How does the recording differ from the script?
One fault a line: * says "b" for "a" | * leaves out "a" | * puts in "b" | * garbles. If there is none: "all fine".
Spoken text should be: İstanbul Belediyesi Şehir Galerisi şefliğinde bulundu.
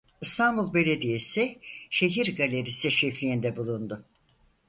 all fine